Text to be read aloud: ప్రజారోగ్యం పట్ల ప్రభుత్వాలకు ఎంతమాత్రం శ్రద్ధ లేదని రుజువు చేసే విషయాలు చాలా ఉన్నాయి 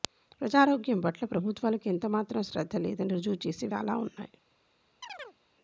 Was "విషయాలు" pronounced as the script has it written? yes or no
no